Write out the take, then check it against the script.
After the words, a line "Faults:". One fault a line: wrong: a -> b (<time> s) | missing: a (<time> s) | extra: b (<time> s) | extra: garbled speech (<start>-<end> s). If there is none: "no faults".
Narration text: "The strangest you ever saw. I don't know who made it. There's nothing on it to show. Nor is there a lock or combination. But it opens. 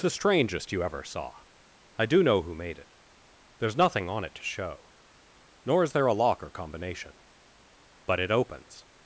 "The strangest you ever saw. I do know who made it. There's nothing on it to show. Nor is there a lock or combination. But it opens.
Faults:
wrong: don't -> do (2.1 s)